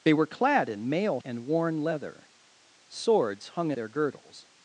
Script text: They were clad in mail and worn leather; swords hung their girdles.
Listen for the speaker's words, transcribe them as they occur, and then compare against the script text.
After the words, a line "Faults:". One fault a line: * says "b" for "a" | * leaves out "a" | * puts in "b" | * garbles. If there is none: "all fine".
They were clad in mail and worn leather; swords hung their girdles.
Faults:
all fine